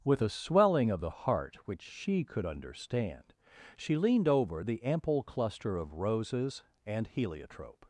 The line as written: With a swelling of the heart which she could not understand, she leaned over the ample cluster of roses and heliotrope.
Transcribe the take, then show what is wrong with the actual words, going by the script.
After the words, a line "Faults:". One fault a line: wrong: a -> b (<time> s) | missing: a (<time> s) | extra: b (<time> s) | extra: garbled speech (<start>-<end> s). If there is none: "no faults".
With a swelling of the heart which she could understand, she leaned over the ample cluster of roses and heliotrope.
Faults:
missing: not (2.5 s)